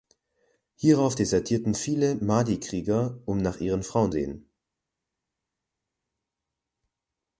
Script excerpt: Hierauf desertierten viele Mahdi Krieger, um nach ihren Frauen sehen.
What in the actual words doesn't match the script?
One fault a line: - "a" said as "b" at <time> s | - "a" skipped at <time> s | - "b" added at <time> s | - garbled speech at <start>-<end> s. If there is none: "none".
none